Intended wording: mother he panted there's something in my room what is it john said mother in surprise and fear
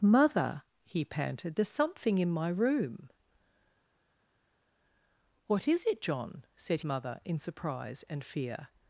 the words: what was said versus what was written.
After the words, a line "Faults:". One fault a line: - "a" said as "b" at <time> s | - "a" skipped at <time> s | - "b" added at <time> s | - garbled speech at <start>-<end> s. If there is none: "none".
mother he panted there's something in my room what is it john said mother in surprise and fear
Faults:
none